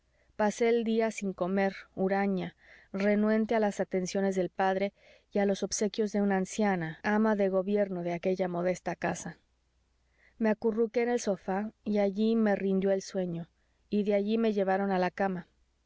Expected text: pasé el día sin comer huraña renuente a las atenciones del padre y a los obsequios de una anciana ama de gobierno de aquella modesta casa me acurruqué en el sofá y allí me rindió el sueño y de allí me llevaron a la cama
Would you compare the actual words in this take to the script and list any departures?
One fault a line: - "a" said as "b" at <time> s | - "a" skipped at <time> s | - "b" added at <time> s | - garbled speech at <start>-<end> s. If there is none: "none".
none